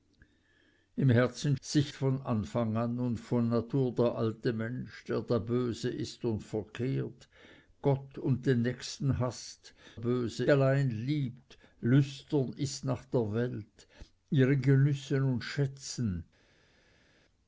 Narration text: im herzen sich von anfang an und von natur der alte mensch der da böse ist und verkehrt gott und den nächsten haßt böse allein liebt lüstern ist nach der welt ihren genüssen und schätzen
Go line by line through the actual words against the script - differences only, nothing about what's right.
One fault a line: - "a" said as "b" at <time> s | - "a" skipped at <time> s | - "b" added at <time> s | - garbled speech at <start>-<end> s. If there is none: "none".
none